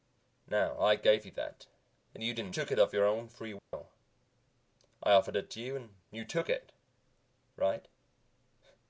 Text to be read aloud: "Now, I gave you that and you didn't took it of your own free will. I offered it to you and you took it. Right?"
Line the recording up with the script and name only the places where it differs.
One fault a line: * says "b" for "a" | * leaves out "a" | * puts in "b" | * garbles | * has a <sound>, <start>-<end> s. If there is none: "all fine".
* has a dropout, 3.6-3.7 s